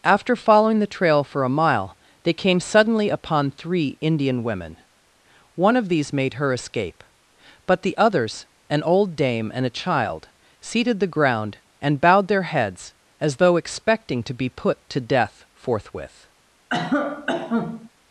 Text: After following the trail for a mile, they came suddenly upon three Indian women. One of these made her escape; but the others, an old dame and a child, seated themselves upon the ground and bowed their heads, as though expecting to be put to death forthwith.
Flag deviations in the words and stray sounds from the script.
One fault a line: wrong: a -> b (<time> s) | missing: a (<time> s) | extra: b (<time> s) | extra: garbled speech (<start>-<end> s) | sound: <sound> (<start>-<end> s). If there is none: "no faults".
missing: themselves upon (11.0 s)
sound: cough (16.7-17.9 s)